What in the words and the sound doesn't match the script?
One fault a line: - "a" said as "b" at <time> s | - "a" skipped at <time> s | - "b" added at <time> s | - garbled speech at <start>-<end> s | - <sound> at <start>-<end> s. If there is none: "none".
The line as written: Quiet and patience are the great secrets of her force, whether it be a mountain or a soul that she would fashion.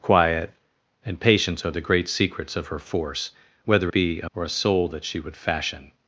- "it" skipped at 3.9 s
- "mountain" skipped at 4.3 s